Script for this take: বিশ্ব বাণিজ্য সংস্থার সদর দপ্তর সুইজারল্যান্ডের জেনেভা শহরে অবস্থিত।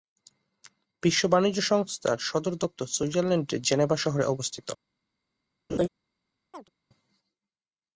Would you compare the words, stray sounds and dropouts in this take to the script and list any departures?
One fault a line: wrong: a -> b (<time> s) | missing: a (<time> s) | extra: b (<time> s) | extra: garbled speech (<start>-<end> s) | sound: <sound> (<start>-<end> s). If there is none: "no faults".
sound: laugh (5.7-5.9 s)
sound: chirp (6.5-6.7 s)